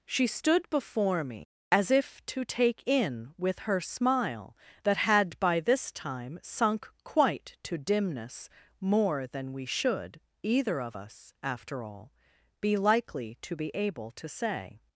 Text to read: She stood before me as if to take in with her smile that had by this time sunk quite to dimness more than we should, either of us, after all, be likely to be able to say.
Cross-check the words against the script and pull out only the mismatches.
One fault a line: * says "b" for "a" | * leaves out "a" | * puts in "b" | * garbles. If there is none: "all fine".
all fine